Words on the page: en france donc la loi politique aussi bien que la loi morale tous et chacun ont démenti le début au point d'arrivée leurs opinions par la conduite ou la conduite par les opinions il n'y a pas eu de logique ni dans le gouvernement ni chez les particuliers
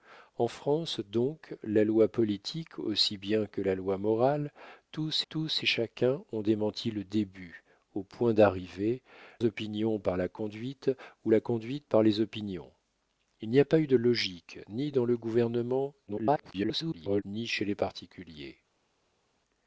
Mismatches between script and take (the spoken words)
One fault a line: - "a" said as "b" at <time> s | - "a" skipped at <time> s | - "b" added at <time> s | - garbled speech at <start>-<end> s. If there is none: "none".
- "tous" added at 5.3 s
- "leurs" skipped at 9.0 s
- garbled speech at 16.1-17.2 s